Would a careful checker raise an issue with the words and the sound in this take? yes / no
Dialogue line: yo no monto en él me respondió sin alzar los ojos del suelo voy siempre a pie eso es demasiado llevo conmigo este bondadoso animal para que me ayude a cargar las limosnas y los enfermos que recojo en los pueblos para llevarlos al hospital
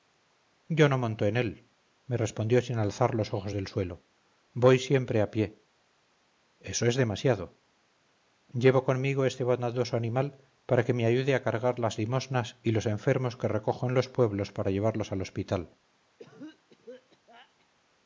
yes